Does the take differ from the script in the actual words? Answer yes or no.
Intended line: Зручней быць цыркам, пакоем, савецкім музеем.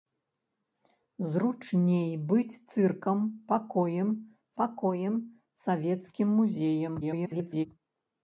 yes